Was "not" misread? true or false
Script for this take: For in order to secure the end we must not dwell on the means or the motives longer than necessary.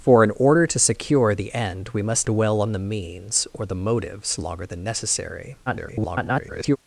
true